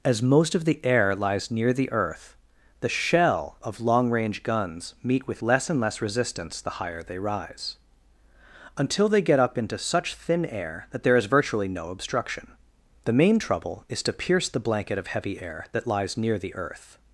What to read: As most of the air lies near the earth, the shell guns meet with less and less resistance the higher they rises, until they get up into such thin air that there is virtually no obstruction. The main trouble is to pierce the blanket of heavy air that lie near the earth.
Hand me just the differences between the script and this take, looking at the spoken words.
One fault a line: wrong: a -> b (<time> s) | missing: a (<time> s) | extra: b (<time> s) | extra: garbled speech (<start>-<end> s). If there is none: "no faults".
extra: of long range (3.6 s)
wrong: rises -> rise (7.2 s)
wrong: lie -> lies (15.9 s)